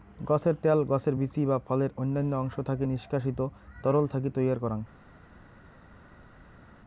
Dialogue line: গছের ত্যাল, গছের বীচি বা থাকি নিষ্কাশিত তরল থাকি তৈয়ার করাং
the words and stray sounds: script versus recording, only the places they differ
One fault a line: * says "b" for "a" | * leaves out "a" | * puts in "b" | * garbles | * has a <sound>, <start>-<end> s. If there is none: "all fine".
* puts in "ফলের অইন্যান্য অংশ"